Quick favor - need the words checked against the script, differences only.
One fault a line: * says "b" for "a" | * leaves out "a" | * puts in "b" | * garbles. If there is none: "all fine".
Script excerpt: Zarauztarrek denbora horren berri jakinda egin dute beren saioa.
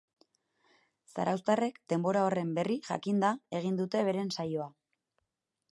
all fine